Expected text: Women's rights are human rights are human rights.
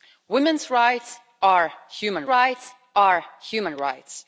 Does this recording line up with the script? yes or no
yes